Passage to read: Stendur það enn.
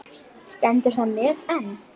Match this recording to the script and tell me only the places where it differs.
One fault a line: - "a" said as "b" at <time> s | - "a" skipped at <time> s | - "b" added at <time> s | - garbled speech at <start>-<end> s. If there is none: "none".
- "met" added at 1.2 s